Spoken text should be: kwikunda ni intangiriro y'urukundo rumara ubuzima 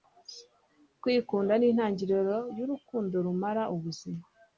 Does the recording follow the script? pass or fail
pass